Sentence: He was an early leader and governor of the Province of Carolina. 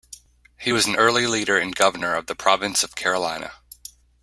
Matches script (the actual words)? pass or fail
pass